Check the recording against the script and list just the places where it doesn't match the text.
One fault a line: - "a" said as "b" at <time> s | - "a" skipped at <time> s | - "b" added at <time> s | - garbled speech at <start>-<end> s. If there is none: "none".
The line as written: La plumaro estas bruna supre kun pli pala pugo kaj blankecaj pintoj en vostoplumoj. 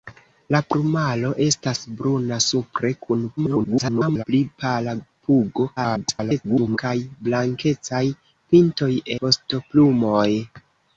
- garbled speech at 3.4-4.2 s
- garbled speech at 5.8-6.8 s
- "en" skipped at 9.0 s